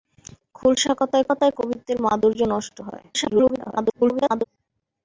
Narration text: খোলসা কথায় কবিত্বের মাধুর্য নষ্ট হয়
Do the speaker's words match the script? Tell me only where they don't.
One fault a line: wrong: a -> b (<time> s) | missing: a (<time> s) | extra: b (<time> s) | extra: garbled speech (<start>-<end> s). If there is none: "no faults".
extra: কথায় (1.3 s)
extra: garbled speech (3.1-4.4 s)